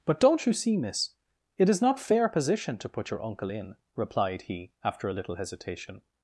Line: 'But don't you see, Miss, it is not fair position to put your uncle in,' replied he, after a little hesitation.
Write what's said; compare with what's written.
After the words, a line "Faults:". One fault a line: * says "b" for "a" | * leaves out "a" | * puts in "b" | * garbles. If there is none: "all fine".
'But don't you see, Miss, it is not fair position to put your uncle in,' replied he, after a little hesitation.
Faults:
all fine